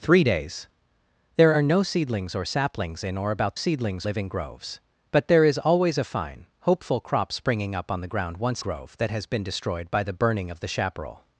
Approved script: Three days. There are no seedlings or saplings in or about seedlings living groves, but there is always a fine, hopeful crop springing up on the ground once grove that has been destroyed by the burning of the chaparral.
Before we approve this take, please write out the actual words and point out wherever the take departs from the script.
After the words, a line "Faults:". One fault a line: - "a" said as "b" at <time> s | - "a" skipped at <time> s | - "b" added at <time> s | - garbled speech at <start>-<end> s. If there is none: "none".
Three days. There are no seedlings or saplings in or about seedlings living groves, but there is always a fine, hopeful crop springing up on the ground once grove that has been destroyed by the burning of the chaparral.
Faults:
none